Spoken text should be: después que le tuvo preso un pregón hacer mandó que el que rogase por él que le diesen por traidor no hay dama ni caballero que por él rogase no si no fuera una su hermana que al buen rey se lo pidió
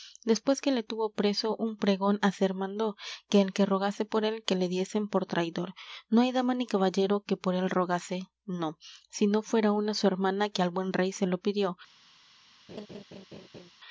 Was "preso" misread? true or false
false